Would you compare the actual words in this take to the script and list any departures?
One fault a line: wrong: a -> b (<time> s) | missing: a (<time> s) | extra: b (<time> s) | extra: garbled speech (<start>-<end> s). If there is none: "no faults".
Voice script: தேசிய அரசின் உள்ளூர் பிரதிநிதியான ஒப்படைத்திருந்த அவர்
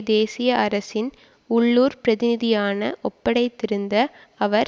no faults